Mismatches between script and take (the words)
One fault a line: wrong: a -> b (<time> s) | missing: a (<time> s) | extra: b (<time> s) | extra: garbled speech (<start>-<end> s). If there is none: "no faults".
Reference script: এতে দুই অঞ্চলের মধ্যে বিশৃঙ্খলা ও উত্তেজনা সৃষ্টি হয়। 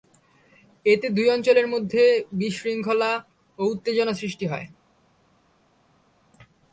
no faults